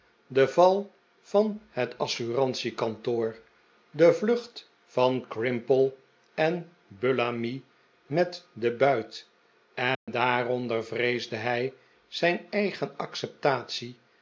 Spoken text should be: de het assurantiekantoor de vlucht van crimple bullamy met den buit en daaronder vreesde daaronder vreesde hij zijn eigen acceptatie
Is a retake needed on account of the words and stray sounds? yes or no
yes